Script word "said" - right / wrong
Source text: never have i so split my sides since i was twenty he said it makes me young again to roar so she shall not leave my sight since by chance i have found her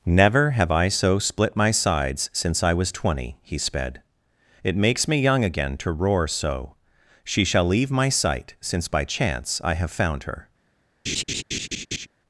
wrong